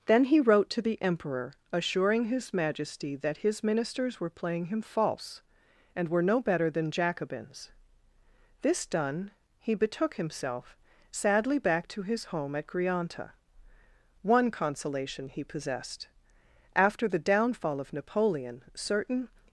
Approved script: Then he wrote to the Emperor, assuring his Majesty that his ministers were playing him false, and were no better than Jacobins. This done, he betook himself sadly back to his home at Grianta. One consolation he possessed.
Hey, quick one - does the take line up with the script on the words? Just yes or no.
no